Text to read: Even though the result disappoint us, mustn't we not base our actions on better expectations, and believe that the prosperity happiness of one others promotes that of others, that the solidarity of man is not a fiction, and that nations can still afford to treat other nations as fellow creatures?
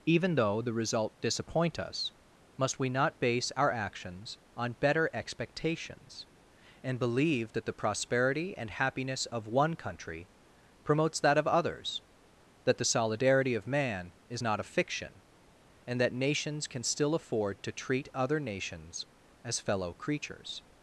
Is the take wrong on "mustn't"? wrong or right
wrong